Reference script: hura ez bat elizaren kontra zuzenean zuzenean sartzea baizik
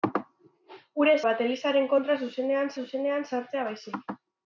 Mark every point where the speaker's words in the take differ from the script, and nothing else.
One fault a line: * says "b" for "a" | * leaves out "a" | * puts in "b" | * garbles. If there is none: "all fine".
all fine